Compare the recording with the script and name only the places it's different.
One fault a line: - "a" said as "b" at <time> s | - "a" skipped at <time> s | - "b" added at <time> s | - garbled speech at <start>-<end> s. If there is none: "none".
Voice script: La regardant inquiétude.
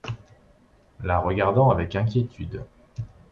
- "avec" added at 1.7 s